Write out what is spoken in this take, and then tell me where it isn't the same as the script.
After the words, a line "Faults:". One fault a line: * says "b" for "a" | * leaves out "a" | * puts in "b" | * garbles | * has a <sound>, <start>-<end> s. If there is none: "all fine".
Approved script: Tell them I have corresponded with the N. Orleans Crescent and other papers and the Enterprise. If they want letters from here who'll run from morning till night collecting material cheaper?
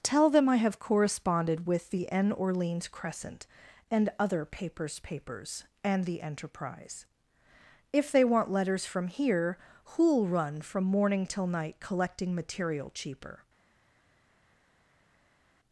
Tell them I have corresponded with the N. Orleans Crescent and other papers papers and the Enterprise. If they want letters from here who'll run from morning till night collecting material cheaper?
Faults:
* puts in "papers"